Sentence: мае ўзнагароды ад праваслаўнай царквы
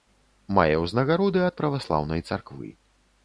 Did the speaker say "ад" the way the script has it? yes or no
yes